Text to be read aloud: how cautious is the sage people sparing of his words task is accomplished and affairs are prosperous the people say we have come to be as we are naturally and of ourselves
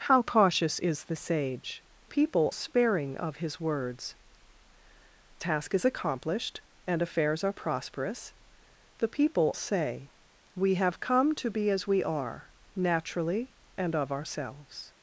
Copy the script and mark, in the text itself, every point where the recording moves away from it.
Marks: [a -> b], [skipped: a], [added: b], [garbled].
how cautious is the sage people sparing of his words task is accomplished and affairs are prosperous the people say we have come to be as we are naturally and of ourselves